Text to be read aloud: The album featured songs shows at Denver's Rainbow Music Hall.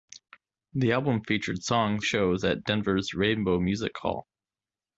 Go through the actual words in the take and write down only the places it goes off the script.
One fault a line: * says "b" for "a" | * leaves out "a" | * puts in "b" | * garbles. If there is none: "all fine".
all fine